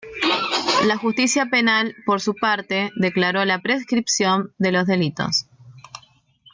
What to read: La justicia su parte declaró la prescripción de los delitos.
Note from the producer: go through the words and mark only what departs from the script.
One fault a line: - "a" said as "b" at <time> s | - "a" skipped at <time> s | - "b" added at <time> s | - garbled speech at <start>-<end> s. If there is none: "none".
- "penal por" added at 1.5 s